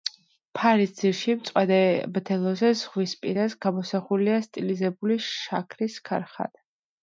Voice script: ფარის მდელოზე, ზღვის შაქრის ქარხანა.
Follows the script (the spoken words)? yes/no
no